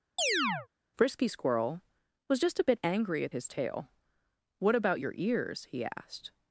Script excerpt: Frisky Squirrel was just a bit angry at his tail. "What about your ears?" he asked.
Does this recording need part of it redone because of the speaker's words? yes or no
no